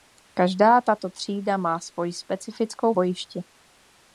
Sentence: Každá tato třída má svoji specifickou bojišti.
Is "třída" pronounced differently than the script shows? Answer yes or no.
no